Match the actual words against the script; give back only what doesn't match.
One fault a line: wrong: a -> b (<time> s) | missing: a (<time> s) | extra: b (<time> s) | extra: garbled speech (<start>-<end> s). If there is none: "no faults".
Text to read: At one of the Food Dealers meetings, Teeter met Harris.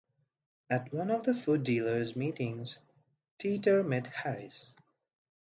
no faults